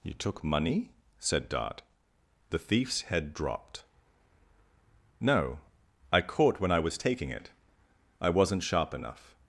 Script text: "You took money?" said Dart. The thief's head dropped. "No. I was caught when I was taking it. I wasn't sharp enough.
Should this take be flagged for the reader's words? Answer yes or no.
yes